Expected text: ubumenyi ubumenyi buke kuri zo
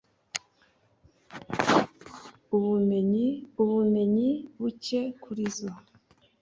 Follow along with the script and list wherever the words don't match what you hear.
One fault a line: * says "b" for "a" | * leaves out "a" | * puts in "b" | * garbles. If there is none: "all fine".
all fine